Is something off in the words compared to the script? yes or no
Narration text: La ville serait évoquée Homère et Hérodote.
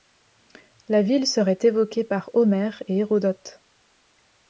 yes